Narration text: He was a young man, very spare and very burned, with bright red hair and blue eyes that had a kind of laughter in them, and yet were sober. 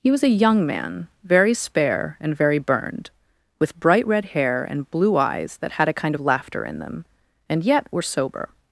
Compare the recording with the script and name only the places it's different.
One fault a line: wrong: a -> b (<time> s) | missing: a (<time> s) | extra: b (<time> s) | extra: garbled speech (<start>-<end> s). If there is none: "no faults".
no faults